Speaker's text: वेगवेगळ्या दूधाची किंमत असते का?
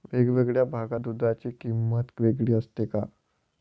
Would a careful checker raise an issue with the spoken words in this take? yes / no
yes